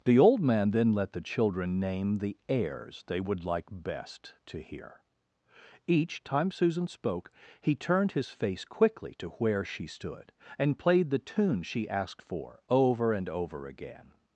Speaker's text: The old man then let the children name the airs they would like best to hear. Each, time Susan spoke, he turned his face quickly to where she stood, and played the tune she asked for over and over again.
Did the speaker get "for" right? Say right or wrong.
right